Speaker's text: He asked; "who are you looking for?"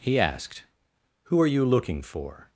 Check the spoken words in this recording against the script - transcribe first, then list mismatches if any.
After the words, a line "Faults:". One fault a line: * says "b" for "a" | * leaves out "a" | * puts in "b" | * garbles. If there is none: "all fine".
He asked; "who are you looking for?"
Faults:
all fine